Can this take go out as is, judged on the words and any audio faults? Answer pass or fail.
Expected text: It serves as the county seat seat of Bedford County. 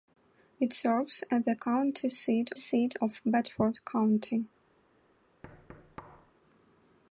fail